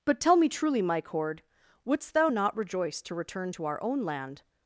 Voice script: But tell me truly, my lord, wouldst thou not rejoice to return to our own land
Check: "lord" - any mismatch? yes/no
yes